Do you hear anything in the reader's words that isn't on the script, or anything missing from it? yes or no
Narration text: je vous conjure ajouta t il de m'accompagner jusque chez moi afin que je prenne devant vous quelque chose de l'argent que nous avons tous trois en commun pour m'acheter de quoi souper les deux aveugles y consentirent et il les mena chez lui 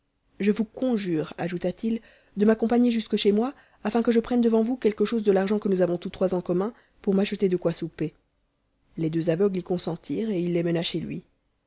no